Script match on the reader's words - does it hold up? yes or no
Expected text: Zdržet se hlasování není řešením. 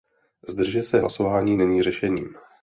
yes